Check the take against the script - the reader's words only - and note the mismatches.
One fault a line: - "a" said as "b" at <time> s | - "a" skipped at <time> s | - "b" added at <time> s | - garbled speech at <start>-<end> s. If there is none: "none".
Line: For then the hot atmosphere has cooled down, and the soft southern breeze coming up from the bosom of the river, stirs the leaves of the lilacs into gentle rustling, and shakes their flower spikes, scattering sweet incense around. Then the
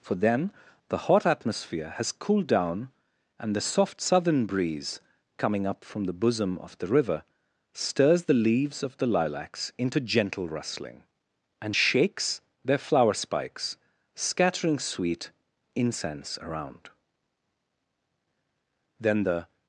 none